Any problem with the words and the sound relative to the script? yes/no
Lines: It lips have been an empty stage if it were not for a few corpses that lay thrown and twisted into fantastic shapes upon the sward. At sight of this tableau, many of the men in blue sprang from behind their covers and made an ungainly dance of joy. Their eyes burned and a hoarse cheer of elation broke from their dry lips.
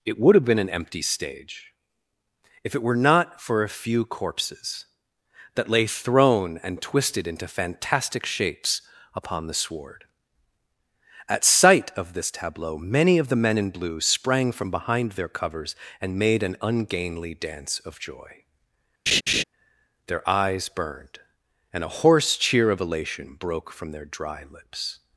yes